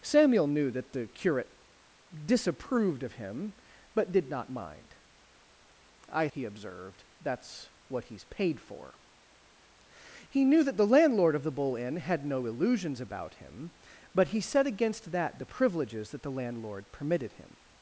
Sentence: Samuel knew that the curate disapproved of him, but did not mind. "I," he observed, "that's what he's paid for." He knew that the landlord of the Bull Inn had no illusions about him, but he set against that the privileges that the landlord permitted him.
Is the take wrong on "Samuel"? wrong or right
right